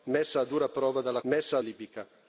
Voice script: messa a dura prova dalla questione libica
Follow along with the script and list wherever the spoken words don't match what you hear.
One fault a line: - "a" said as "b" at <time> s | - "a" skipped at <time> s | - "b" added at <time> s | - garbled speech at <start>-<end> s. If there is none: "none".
- "questione" said as "messa" at 1.2 s